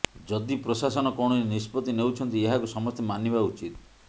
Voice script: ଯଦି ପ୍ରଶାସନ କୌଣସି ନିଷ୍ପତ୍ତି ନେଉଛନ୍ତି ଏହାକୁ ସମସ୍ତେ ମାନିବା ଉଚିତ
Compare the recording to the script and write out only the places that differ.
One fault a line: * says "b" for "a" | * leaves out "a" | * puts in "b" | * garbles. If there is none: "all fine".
all fine